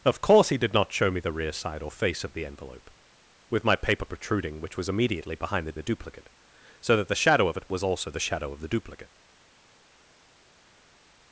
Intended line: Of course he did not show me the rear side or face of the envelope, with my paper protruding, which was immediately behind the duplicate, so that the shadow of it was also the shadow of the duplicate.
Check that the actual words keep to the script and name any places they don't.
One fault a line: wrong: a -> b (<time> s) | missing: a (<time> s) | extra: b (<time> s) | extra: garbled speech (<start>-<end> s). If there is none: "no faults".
extra: the (5.8 s)